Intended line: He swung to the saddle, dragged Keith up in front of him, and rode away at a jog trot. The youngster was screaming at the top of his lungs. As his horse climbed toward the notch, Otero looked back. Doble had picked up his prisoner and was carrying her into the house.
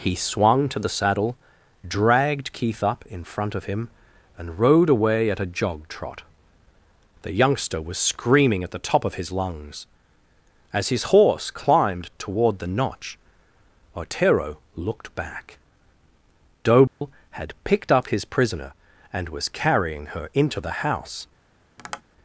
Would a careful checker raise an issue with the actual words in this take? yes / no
no